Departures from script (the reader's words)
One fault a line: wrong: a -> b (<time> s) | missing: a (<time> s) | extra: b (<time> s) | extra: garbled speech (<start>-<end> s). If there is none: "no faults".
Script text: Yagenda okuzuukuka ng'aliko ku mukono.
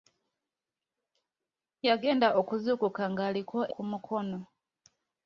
no faults